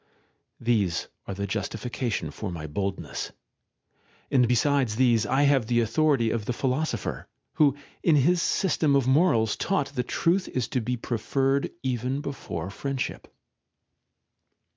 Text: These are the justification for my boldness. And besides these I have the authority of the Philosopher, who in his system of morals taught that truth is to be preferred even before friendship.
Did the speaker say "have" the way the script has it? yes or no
yes